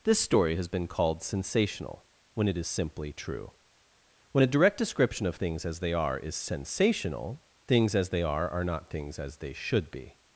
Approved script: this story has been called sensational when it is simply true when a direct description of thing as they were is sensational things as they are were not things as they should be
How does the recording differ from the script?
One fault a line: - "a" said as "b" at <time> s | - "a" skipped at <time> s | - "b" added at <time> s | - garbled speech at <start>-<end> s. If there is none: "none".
- "thing" said as "things" at 5.3 s
- "were" said as "are" at 5.9 s
- "were" said as "are" at 8.5 s